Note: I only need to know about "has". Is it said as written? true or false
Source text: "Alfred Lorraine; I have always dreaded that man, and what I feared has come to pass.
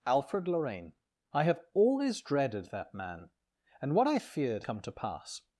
false